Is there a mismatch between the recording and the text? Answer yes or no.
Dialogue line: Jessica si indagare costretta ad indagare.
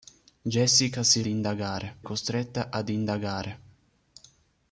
no